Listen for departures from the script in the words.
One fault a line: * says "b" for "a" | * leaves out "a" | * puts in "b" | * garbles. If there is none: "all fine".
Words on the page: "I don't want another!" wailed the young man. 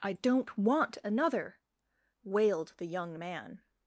all fine